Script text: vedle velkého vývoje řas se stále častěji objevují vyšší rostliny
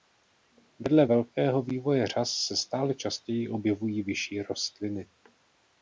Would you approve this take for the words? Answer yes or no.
yes